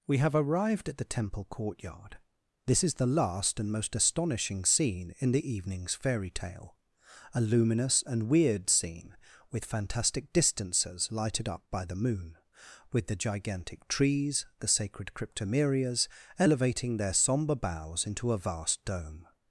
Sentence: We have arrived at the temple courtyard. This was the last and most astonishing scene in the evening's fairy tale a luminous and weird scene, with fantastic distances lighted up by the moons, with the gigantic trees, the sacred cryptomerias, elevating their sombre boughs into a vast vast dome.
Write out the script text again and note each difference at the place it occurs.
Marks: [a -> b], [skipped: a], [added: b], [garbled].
We have arrived at the temple courtyard. This [was -> is] the last and most astonishing scene in the evening's fairy tale a luminous and weird scene, with fantastic distances lighted up by the [moons, -> moon] with the gigantic trees, the sacred cryptomerias, elevating their sombre boughs into a vast [skipped: vast] dome.